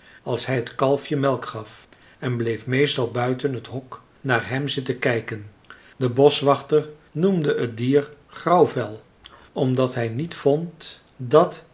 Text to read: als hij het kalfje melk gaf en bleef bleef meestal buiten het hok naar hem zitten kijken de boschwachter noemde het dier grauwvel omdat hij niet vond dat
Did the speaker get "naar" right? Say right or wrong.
right